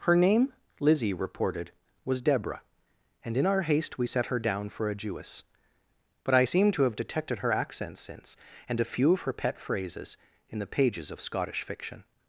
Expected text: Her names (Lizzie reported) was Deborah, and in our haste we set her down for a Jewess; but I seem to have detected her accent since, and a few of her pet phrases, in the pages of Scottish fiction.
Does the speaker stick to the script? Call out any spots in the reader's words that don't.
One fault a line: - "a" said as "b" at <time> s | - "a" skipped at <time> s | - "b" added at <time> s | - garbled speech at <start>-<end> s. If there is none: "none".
- "names" said as "name" at 0.1 s